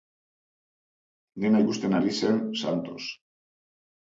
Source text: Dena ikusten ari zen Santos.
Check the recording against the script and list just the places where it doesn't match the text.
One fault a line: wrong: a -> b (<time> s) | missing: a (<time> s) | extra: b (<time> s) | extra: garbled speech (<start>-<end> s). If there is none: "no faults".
no faults